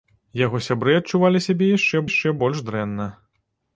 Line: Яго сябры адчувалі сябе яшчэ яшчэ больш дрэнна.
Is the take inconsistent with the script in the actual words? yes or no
no